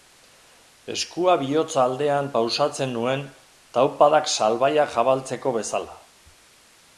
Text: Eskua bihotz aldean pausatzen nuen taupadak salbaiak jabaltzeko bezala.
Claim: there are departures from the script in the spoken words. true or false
false